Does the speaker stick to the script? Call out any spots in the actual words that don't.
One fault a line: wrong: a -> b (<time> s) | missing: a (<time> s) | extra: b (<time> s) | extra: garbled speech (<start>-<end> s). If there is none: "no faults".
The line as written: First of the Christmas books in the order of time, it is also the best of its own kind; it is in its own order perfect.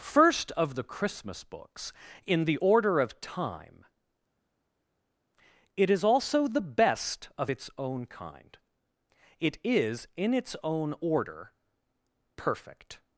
no faults